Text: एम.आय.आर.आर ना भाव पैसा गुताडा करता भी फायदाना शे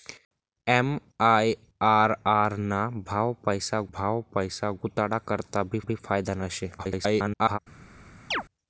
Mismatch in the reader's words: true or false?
true